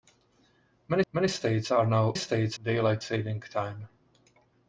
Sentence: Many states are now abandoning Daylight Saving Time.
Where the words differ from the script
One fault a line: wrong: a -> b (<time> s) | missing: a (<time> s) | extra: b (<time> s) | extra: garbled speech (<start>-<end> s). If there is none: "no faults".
extra: many (1.1 s)
wrong: abandoning -> states (2.1 s)